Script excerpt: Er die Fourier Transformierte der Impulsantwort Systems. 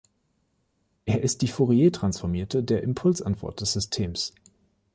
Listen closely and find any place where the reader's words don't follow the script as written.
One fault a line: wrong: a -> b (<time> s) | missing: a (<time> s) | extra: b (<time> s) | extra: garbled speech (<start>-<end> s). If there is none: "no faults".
extra: ist (1.2 s)
extra: des (3.6 s)